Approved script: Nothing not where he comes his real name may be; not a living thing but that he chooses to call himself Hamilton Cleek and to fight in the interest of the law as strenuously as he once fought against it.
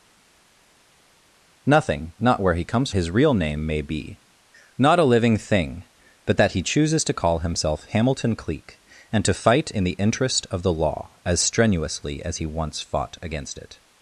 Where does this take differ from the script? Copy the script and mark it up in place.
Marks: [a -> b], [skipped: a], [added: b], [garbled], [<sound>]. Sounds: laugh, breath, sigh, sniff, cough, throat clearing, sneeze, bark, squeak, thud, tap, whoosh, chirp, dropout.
Nothing not where he comes his real name may be; not a living thing but that he chooses to call himself Hamilton Cleek and to fight in the interest of the law as strenuously as he once fought against it.